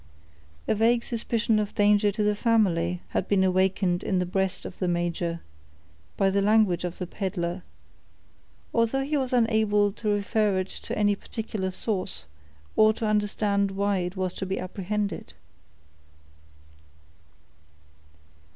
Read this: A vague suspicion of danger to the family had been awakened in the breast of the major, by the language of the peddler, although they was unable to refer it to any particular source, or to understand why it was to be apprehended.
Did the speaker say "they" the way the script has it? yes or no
no